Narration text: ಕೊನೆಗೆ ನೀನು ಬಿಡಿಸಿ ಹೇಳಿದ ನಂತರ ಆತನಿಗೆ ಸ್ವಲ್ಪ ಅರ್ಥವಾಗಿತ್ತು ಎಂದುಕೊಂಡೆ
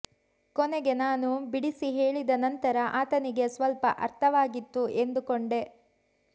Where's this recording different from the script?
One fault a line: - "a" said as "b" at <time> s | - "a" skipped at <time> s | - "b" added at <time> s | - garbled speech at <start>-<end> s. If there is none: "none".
- "ನೀನು" said as "ನಾನು" at 0.9 s